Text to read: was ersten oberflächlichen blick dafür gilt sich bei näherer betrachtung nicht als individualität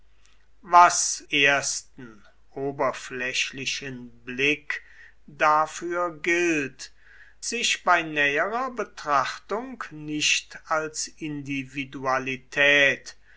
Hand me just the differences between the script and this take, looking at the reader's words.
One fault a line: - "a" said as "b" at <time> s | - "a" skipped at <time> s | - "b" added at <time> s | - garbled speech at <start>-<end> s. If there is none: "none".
none